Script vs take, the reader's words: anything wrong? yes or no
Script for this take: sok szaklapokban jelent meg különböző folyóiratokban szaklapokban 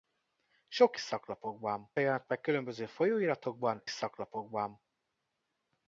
no